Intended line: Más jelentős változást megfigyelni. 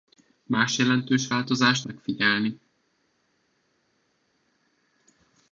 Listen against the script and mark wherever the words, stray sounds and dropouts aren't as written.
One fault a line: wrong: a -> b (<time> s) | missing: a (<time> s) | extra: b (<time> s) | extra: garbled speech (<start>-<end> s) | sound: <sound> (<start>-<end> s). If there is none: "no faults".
no faults